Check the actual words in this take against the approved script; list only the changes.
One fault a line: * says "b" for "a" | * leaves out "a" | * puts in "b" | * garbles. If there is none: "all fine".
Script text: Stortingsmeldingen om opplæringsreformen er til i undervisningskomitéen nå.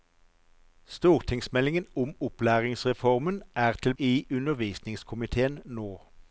all fine